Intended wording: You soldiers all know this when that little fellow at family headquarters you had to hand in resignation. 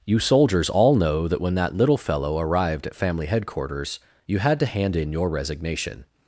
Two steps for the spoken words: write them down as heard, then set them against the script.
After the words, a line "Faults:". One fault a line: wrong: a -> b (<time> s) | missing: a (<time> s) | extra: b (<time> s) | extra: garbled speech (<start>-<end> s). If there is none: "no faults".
You soldiers all know that when that little fellow arrived at family headquarters you had to hand in your resignation.
Faults:
wrong: this -> that (1.3 s)
extra: arrived (2.4 s)
extra: your (5.1 s)